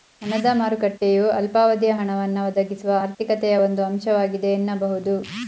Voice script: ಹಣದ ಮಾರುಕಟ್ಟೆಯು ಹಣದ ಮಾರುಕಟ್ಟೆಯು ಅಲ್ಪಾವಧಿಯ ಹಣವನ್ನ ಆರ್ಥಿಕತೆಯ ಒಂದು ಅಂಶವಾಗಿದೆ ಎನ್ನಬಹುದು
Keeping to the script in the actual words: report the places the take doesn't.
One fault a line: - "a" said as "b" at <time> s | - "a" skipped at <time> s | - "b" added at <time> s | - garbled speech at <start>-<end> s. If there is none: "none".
- "ಹಣದ ಮಾರುಕಟ್ಟೆಯು" skipped at 1.2 s
- "ಒದಗಿಸುವ" added at 2.5 s